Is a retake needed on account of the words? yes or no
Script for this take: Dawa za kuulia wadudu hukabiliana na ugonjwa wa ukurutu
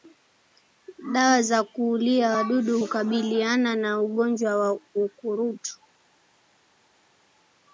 no